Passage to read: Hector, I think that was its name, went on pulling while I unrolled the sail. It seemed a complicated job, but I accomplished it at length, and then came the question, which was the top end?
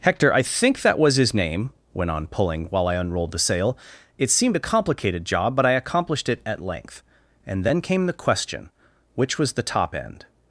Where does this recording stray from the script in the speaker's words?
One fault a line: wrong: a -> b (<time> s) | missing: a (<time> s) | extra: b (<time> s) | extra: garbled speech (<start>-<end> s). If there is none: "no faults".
wrong: its -> his (1.2 s)